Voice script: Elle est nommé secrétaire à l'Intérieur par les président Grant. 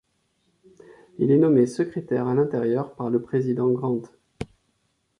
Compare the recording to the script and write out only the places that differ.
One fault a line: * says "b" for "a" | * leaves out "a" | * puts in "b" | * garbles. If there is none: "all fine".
* says "Il" for "Elle"
* says "le" for "les"